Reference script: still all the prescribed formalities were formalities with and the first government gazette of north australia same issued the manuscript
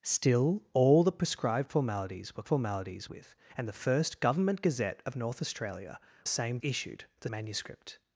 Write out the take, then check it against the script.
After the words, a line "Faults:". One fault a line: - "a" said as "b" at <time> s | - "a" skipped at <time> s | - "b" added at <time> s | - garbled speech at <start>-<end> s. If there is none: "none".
still all the prescribed formalities were formalities with and the first government gazette of north australia same issued the manuscript
Faults:
none